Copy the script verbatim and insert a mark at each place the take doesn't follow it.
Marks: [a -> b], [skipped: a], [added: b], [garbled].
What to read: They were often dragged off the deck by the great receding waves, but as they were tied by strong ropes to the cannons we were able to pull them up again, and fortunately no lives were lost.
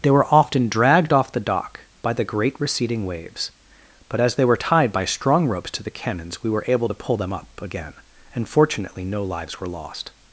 They were often dragged off the [deck -> dock] by the great receding waves, but as they were tied by strong ropes to the cannons we were able to pull them up again, and fortunately no lives were lost.